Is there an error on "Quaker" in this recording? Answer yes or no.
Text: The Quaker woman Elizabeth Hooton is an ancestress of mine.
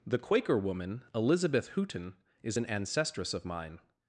no